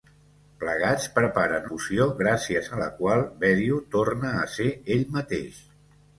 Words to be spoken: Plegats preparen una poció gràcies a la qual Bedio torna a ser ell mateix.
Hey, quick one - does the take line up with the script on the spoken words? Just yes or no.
no